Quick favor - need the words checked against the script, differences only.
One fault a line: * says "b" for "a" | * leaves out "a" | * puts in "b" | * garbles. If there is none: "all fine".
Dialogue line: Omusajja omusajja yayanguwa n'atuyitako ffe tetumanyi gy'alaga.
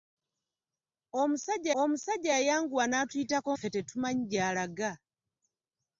all fine